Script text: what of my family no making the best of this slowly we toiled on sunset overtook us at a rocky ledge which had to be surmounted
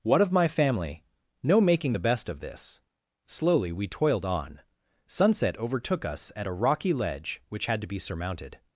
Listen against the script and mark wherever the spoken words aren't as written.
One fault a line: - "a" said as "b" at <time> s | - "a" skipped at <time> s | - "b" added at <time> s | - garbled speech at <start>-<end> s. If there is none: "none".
none